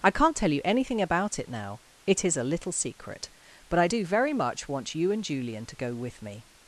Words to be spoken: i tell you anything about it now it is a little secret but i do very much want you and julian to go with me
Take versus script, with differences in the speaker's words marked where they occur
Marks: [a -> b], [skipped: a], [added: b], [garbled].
i [added: can't] tell you anything about it now it is a little secret but i do very much want you and julian to go with me